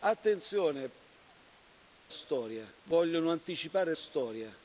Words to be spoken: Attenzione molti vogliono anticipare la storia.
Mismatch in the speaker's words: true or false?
true